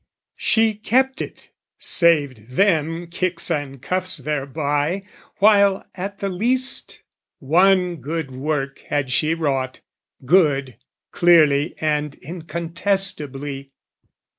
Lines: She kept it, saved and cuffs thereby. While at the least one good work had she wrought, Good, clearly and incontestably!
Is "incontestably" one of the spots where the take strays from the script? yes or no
no